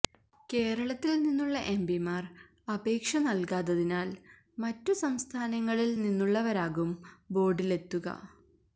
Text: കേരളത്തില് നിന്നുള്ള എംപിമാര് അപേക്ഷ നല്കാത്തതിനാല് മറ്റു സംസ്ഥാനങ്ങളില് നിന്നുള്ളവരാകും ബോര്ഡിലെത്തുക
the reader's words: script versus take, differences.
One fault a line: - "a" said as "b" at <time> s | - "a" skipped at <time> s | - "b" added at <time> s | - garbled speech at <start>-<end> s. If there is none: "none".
none